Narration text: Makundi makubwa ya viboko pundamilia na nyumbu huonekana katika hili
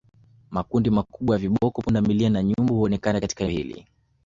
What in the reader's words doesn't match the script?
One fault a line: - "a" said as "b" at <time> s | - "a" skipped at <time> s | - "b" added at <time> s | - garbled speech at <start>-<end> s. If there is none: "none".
none